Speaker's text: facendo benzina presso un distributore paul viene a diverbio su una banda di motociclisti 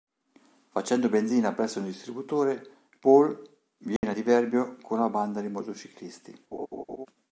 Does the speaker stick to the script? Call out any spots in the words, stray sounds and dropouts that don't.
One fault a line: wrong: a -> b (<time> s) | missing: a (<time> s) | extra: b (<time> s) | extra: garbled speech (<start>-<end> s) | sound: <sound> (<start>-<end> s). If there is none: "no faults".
sound: dropout (4.0-4.0 s)
wrong: su -> con (4.8 s)
sound: laugh (6.5-7.1 s)